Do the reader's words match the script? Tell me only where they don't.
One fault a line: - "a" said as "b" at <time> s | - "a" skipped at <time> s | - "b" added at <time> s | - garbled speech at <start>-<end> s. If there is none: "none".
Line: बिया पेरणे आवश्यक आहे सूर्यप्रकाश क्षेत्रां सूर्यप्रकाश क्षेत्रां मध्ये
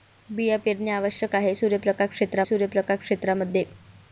none